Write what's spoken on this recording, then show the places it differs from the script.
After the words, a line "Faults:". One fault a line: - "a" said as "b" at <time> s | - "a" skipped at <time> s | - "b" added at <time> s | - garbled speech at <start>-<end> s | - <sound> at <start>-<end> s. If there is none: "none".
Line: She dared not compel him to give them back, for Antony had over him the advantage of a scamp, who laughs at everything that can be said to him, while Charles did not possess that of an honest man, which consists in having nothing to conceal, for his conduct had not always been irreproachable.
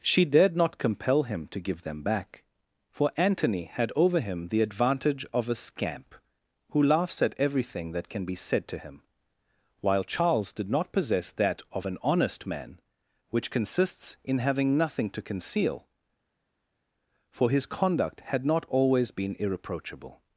She dared not compel him to give them back, for Antony had over him the advantage of a scamp, who laughs at everything that can be said to him, while Charles did not possess that of an honest man, which consists in having nothing to conceal, for his conduct had not always been irreproachable.
Faults:
none